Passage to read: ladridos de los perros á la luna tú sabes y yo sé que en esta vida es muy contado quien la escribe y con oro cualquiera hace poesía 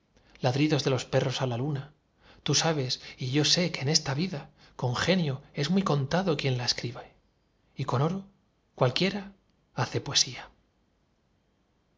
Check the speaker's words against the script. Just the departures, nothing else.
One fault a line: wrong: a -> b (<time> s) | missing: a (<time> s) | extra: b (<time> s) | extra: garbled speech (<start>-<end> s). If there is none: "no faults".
extra: con genio (4.8 s)